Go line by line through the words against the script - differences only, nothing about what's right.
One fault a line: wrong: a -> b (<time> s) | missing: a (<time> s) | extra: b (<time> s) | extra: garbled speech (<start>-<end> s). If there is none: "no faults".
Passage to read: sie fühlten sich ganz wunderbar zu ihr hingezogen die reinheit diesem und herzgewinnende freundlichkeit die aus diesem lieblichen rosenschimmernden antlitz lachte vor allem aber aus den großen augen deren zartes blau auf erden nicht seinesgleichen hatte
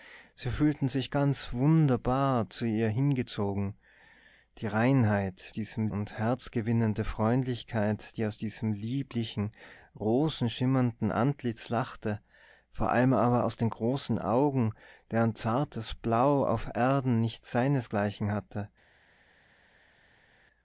no faults